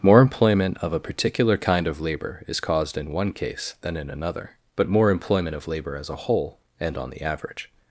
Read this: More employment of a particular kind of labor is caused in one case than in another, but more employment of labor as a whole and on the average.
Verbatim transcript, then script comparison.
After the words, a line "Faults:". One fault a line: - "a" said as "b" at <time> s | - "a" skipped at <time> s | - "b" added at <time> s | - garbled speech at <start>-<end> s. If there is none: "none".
More employment of a particular kind of labor is caused in one case than in another, but more employment of labor as a whole and on the average.
Faults:
none